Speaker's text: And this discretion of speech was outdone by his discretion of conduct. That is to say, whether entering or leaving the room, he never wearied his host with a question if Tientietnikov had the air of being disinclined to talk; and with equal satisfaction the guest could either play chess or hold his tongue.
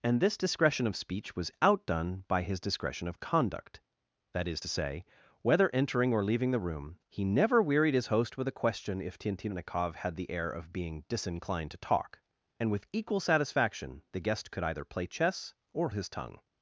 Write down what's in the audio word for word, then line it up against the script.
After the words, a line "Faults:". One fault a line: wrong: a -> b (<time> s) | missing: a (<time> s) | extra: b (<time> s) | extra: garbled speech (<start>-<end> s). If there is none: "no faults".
And this discretion of speech was outdone by his discretion of conduct. That is to say, whether entering or leaving the room, he never wearied his host with a question if Tientietnikov had the air of being disinclined to talk; and with equal satisfaction the guest could either play chess or his tongue.
Faults:
missing: hold (15.9 s)